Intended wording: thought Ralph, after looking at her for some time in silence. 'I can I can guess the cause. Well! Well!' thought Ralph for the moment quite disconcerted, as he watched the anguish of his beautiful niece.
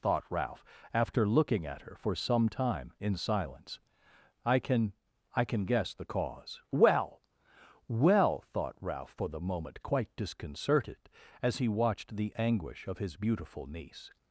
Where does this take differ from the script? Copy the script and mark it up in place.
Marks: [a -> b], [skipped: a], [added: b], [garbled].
thought Ralph, after looking at her for some time in silence. 'I can I can guess the cause. Well! Well!' thought Ralph for the moment quite disconcerted, as he watched the anguish of his beautiful niece.